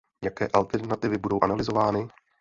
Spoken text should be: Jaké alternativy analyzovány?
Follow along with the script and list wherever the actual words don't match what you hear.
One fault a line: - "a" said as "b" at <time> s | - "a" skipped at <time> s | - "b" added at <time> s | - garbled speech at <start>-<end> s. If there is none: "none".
- "budou" added at 1.2 s